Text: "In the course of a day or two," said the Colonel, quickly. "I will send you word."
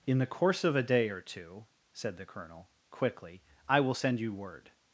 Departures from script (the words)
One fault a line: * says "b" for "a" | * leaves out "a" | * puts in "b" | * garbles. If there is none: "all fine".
all fine